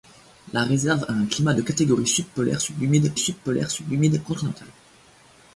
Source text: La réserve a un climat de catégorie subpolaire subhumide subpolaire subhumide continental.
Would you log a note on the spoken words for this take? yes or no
no